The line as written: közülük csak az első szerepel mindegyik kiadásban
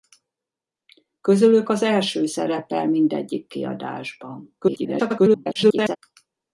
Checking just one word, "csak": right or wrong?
wrong